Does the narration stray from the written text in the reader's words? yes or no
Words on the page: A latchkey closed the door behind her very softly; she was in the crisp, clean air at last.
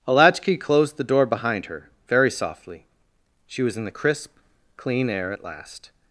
no